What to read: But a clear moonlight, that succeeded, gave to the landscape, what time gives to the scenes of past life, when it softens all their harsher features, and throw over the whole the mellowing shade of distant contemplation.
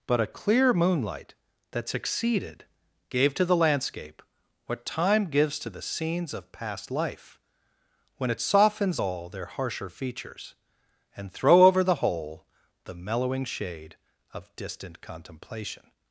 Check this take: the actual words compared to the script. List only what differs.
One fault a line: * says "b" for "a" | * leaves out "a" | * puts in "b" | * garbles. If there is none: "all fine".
all fine